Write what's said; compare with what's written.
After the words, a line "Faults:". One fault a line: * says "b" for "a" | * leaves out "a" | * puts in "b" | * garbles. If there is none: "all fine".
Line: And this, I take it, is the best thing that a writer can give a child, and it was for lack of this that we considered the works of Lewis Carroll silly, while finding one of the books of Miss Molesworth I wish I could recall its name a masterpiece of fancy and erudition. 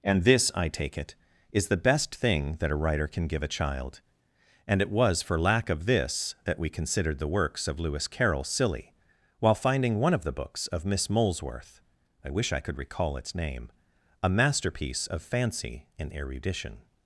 And this, I take it, is the best thing that a writer can give a child, and it was for lack of this that we considered the works of Lewis Carroll silly, while finding one of the books of Miss Molesworth I wish I could recall its name a masterpiece of fancy and erudition.
Faults:
all fine